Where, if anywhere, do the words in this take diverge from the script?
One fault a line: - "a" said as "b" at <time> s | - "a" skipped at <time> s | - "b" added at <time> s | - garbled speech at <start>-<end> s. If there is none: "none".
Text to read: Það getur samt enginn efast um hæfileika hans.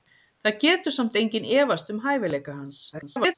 - garbled speech at 2.9-3.3 s